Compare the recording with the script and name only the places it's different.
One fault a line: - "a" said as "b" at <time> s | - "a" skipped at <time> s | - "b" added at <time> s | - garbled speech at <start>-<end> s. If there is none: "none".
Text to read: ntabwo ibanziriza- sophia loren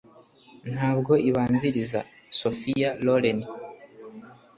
none